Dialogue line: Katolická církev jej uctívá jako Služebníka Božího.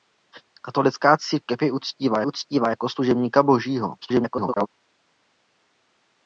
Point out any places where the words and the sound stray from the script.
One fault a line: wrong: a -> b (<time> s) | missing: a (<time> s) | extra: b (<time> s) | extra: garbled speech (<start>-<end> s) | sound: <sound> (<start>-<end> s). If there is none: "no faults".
extra: uctívá (2.2 s)
extra: garbled speech (4.0-4.7 s)